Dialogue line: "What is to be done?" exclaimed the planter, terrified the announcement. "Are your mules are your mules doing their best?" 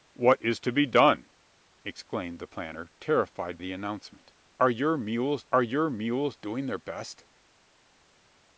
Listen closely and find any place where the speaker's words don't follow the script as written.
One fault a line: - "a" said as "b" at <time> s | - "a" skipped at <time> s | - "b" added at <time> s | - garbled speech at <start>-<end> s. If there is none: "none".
none